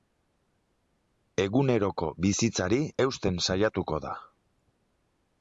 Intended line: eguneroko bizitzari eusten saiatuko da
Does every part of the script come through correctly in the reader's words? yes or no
yes